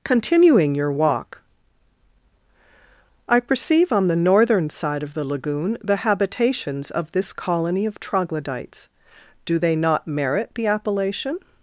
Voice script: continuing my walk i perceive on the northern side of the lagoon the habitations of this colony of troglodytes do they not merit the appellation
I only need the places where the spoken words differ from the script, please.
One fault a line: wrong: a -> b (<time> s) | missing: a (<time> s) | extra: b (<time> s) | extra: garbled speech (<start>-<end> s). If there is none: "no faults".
wrong: my -> your (0.8 s)